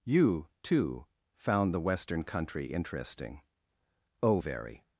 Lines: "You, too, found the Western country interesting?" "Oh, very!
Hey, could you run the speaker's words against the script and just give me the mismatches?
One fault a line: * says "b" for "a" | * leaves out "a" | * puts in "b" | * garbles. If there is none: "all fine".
all fine